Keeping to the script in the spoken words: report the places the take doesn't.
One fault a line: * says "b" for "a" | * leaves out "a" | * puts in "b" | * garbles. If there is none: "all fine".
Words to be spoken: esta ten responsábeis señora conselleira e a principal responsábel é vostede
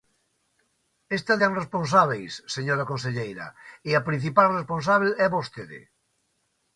all fine